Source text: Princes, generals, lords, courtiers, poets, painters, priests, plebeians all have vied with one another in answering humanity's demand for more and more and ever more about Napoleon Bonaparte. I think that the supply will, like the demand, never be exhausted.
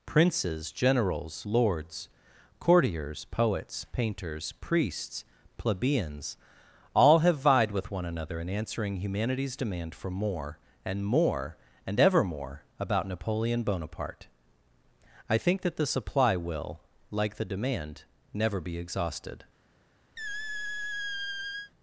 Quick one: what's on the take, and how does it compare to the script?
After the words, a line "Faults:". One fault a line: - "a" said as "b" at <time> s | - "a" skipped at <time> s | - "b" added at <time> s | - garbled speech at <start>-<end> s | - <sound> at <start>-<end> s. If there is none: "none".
Princes, generals, lords, courtiers, poets, painters, priests, plebeians all have vied with one another in answering humanity's demand for more and more and ever more about Napoleon Bonaparte. I think that the supply will, like the demand, never be exhausted.
Faults:
- squeak at 20.2-21.7 s